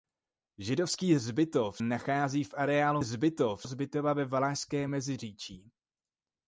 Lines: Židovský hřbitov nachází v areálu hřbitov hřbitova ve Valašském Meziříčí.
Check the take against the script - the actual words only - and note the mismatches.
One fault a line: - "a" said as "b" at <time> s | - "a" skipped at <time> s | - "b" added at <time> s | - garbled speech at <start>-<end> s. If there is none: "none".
none